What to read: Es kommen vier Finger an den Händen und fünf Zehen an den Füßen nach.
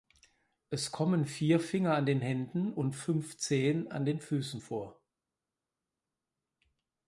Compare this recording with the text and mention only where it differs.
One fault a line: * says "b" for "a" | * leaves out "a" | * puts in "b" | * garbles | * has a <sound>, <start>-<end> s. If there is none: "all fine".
* says "vor" for "nach"